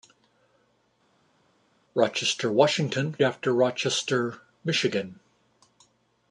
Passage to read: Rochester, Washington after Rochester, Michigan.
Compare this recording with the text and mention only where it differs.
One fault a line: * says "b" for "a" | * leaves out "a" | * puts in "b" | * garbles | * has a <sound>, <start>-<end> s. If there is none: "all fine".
all fine